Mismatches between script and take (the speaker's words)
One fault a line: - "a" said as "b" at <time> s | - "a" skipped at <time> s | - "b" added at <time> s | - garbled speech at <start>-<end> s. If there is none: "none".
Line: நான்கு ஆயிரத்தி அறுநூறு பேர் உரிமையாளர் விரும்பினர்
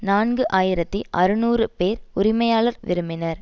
none